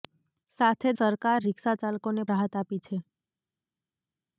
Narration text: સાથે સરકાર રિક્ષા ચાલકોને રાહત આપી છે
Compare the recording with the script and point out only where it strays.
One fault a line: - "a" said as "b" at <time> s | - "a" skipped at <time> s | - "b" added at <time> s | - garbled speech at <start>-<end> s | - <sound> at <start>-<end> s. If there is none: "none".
none